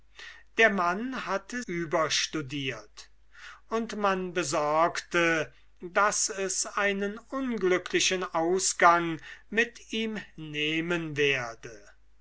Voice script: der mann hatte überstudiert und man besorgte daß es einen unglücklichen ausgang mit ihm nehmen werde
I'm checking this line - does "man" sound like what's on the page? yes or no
yes